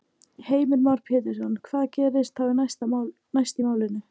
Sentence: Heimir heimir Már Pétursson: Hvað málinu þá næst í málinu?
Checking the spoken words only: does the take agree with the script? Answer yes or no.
no